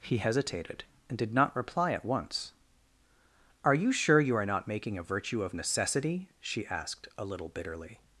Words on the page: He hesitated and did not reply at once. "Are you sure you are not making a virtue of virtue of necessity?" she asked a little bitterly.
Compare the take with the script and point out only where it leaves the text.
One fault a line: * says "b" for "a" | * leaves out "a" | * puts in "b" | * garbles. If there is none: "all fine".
* leaves out "virtue of"